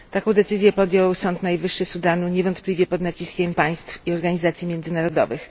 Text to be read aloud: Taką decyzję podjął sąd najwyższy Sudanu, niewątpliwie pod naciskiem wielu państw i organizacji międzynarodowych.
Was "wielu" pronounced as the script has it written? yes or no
no